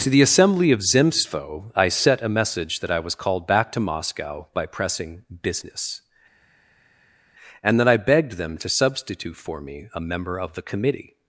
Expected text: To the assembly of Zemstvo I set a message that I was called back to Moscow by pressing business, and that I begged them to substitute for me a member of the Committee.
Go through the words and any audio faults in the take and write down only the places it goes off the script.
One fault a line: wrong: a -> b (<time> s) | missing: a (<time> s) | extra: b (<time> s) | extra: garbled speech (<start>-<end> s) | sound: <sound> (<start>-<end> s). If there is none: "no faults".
no faults